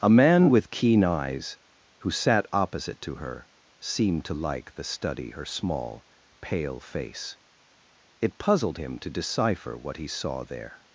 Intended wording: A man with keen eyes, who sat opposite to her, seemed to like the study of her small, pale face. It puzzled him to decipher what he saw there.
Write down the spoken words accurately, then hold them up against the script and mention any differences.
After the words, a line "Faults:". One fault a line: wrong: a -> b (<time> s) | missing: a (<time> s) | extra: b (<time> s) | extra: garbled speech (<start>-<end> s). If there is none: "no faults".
A man with keen eyes, who sat opposite to her, seemed to like the study her small, pale face. It puzzled him to decipher what he saw there.
Faults:
missing: of (5.3 s)